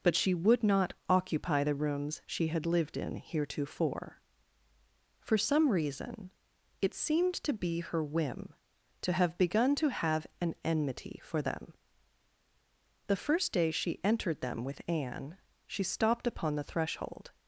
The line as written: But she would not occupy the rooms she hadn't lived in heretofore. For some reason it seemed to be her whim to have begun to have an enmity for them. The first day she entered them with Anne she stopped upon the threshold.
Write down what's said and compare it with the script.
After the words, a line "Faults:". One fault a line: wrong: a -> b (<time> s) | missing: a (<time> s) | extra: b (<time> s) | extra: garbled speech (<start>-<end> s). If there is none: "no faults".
But she would not occupy the rooms she had lived in heretofore. For some reason it seemed to be her whim to have begun to have an enmity for them. The first day she entered them with Anne she stopped upon the threshold.
Faults:
wrong: hadn't -> had (2.5 s)